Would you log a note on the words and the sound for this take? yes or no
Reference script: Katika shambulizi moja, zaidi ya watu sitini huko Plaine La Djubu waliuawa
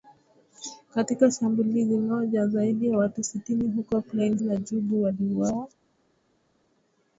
no